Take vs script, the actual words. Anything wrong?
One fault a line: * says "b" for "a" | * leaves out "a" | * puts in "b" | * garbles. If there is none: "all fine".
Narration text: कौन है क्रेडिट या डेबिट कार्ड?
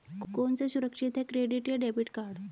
* puts in "सा सुरक्षित"